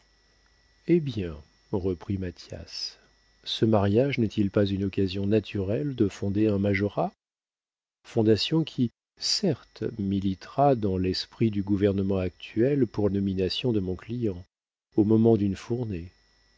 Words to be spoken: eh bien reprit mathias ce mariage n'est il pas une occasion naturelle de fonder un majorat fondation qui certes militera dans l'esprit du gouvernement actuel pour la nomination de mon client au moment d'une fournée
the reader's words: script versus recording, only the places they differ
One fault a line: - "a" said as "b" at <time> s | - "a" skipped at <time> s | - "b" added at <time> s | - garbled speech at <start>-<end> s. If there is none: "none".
- "la" skipped at 13.1 s